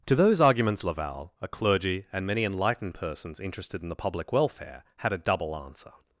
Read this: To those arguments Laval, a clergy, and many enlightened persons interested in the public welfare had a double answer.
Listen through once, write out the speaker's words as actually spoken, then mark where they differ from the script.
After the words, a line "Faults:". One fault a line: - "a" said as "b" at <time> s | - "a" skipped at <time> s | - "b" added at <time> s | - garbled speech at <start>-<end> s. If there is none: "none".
To those arguments Laval, a clergy, and many enlightened persons interested in the public welfare had a double answer.
Faults:
none